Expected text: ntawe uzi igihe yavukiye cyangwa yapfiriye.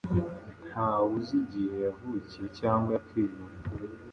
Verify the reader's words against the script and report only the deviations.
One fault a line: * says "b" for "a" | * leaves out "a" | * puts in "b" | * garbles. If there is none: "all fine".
all fine